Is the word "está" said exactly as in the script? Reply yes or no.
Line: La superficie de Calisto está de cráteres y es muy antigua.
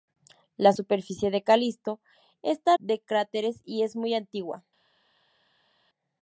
yes